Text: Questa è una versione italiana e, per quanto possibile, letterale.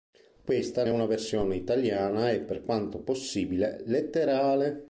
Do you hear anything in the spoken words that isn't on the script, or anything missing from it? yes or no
no